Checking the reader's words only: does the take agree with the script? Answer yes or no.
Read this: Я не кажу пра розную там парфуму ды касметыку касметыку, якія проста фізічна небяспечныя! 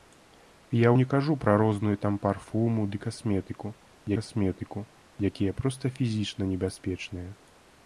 yes